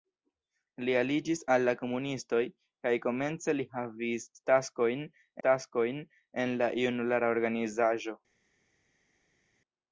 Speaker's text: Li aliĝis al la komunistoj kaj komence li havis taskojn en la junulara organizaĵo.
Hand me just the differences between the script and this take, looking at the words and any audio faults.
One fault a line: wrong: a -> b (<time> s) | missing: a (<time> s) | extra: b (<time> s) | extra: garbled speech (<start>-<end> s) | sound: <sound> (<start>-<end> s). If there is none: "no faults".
extra: taskojn (5.5 s)